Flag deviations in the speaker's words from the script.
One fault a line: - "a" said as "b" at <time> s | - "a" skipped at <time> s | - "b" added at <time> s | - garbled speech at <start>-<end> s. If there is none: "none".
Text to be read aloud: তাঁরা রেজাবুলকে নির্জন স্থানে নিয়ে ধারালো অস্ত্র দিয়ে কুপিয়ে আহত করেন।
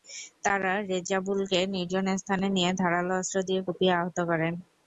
none